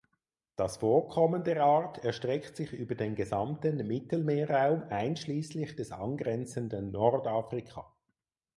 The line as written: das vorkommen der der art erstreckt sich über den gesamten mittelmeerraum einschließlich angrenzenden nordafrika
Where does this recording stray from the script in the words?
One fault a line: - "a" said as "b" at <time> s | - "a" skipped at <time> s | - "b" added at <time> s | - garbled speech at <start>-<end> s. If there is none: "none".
- "der" skipped at 1.6 s
- "des" added at 5.8 s